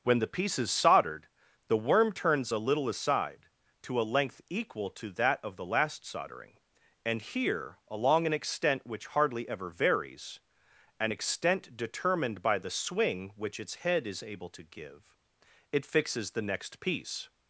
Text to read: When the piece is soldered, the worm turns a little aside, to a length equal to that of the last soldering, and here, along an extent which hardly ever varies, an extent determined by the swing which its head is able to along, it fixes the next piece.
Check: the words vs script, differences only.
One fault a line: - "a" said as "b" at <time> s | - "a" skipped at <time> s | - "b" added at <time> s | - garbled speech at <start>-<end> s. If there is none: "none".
- "along" said as "give" at 14.6 s